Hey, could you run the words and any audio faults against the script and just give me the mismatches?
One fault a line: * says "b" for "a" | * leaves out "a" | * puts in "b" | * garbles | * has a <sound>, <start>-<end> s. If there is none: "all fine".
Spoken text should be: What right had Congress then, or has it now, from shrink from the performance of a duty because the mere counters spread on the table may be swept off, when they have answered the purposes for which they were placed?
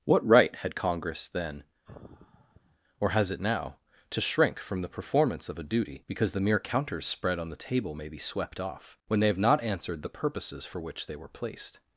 * has a sigh, 1.8-2.8 s
* says "to" for "from"
* puts in "not"